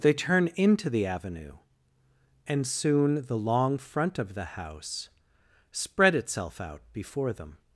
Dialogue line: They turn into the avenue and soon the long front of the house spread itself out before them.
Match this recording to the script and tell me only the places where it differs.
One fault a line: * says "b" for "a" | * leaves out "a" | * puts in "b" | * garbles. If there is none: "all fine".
all fine